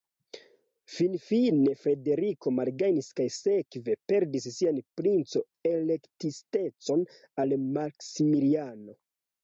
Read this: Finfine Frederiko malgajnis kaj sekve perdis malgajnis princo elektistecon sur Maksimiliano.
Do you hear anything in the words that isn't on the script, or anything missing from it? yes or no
yes